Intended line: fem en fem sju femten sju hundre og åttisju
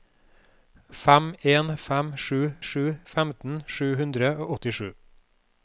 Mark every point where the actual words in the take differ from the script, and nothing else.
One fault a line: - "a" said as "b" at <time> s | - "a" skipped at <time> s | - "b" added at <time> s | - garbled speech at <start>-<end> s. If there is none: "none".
- "sju" added at 2.7 s